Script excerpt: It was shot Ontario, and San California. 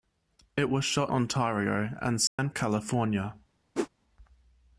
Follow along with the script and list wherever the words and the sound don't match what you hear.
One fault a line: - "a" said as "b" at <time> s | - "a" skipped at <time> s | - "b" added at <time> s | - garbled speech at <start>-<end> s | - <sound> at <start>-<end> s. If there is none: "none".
- dropout at 2.3-2.4 s
- whoosh at 3.7-3.9 s